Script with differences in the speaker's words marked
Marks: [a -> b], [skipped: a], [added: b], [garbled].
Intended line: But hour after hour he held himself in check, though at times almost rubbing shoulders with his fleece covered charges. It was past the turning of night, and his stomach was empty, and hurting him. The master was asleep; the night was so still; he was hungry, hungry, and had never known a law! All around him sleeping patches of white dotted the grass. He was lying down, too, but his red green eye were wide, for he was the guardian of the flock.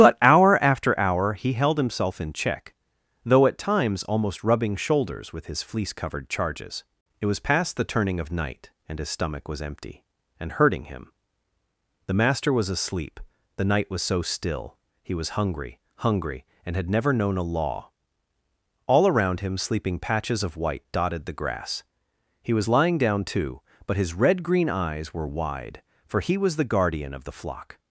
But hour after hour he held himself in check, though at times almost rubbing shoulders with his fleece covered charges. It was past the turning of night, and his stomach was empty, and hurting him. The master was asleep; the night was so still; he was hungry, hungry, and had never known a law! All around him sleeping patches of white dotted the grass. He was lying down, too, but his red green [eye -> eyes] were wide, for he was the guardian of the flock.